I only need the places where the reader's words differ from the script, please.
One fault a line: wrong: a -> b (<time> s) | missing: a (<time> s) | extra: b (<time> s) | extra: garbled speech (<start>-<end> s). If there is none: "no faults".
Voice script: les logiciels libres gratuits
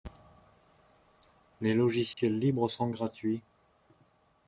extra: sont (2.7 s)